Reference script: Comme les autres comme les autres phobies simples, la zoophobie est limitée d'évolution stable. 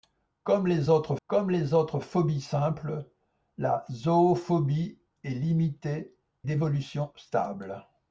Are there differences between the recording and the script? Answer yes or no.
no